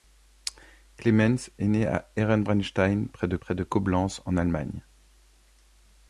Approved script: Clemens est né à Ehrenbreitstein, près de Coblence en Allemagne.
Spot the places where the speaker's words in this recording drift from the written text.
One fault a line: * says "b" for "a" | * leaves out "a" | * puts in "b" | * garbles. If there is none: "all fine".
* puts in "près de"